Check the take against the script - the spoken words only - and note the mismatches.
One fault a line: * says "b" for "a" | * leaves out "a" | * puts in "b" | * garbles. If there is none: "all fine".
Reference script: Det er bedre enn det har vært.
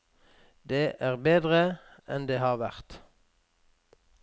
all fine